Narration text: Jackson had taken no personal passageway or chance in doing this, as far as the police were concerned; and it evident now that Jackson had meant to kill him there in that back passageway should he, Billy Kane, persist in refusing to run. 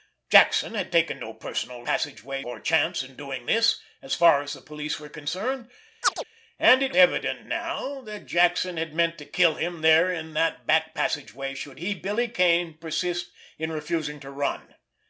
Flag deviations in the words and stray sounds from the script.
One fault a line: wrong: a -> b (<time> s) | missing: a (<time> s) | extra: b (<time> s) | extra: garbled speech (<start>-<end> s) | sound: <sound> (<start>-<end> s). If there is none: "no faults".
sound: chirp (6.0-6.2 s)